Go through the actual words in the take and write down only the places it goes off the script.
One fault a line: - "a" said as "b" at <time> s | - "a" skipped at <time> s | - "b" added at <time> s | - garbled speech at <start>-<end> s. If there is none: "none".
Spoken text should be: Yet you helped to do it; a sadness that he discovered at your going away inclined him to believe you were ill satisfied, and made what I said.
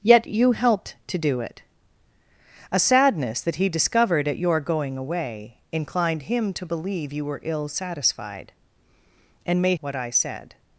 none